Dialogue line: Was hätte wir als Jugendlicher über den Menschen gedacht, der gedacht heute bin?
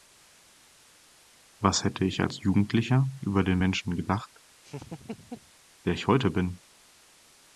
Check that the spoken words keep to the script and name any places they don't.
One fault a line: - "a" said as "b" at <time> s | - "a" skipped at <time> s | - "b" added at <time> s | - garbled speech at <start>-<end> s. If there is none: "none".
- "wir" said as "ich" at 2.0 s
- "gedacht" said as "ich" at 5.9 s